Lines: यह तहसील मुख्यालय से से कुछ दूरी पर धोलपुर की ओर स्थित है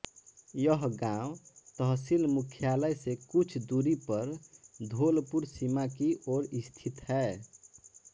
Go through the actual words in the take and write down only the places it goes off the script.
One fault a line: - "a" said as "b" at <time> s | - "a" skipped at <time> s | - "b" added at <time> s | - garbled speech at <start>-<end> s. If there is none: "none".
- "गाँव" added at 1.0 s
- "से" skipped at 3.1 s
- "सीमा" added at 5.4 s